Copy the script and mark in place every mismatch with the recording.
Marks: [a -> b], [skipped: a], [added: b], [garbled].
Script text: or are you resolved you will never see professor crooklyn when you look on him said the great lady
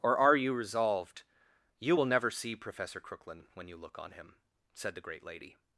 or are you resolved you will never see professor crooklyn when you look on him said the great lady